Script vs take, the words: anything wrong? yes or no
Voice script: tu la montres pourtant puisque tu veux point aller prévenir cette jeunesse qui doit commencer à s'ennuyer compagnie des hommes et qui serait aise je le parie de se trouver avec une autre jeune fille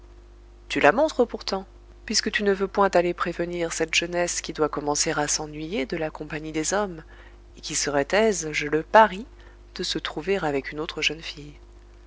yes